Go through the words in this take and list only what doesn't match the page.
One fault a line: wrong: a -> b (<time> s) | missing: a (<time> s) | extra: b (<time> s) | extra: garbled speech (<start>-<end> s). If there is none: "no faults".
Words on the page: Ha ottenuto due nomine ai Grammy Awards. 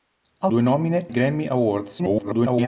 missing: ottenuto (0.5 s)
missing: ai (1.1 s)
extra: garbled speech (2.0-2.7 s)